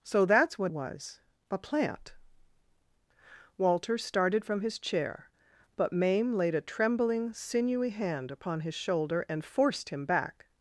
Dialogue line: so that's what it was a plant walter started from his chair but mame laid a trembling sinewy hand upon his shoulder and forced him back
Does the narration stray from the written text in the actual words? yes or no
yes